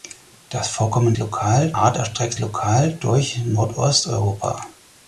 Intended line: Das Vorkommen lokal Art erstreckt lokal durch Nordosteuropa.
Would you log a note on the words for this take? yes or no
no